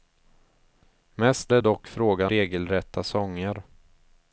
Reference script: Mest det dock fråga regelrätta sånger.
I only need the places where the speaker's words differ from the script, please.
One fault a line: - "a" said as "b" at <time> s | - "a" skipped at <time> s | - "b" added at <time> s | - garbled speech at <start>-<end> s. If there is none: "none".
none